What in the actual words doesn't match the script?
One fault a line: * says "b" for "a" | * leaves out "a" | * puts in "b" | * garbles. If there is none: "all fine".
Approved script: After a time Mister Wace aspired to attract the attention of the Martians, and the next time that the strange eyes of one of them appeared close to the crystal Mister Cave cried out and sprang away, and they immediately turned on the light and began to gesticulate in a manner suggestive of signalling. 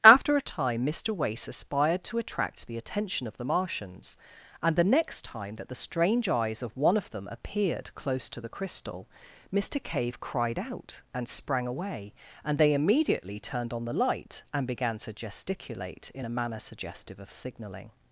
all fine